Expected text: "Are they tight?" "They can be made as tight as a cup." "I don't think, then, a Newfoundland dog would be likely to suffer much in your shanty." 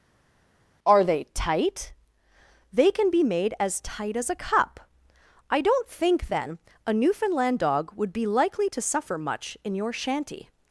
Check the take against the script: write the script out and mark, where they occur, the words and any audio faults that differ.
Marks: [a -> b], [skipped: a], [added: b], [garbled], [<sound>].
"Are they tight?" "They can be made as tight as a cup." "I don't think, then, a Newfoundland dog would be likely to suffer much in your shanty."